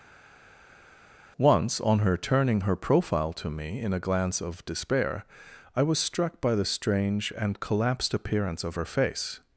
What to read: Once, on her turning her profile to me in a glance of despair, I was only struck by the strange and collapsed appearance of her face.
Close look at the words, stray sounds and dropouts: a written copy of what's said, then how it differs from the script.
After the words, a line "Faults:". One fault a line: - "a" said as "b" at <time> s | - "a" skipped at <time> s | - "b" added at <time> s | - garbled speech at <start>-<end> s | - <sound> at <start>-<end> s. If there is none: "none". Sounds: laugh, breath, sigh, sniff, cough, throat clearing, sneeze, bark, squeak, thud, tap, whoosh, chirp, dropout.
Once, on her turning her profile to me in a glance of despair, I was struck by the strange and collapsed appearance of her face.
Faults:
- "only" skipped at 6.0 s